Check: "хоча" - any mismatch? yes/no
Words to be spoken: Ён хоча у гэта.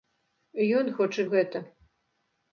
no